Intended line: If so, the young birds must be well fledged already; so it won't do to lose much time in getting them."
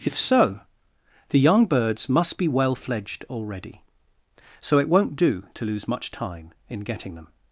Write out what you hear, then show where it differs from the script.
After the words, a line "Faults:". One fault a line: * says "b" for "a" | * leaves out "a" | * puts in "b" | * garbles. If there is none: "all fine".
If so, the young birds must be well fledged already; so it won't do to lose much time in getting them."
Faults:
all fine